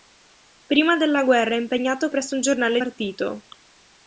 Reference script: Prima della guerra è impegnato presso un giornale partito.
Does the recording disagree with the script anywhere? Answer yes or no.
no